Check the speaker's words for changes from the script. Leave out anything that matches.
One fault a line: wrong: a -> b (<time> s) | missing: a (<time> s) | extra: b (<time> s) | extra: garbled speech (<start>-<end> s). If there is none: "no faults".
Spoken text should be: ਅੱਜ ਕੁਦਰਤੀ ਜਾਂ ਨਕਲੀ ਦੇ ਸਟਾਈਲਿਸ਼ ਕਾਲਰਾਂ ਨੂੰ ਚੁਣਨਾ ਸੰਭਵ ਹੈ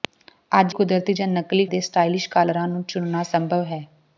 no faults